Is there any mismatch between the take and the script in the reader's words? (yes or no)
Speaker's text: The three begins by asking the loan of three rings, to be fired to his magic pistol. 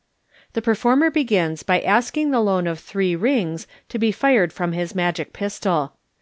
yes